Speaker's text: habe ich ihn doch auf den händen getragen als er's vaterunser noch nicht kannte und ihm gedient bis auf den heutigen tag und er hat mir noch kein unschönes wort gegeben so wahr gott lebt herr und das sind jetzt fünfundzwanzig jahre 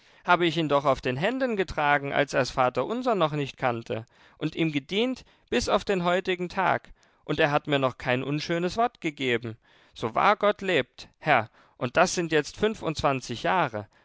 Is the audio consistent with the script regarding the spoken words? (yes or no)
yes